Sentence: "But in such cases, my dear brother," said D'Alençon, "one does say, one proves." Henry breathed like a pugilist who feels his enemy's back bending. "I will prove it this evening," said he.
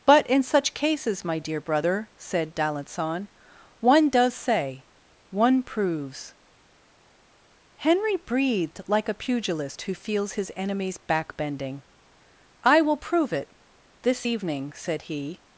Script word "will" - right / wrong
right